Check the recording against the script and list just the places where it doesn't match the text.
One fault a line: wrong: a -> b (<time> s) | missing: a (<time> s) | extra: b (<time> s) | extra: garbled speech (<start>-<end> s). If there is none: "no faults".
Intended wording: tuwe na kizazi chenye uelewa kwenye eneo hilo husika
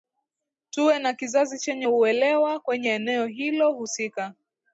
no faults